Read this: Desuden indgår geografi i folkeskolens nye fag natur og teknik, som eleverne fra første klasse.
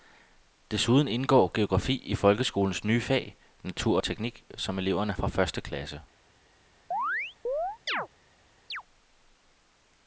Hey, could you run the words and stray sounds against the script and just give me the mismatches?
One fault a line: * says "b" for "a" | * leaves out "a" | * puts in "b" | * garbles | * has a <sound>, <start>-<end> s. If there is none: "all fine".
* has a chirp, 6.9-8.1 s
* has a chirp, 8.7-8.8 s